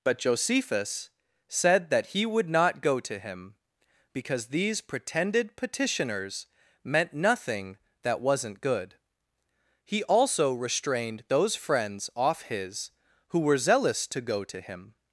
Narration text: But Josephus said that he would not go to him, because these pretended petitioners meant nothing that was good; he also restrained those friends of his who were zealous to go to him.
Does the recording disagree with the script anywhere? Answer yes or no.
yes